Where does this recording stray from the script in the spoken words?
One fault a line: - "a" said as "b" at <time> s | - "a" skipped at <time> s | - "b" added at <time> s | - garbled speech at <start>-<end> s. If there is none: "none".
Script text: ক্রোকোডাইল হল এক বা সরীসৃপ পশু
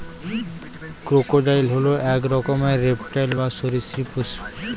- "রকমের রেপ্টাইল" added at 2.3 s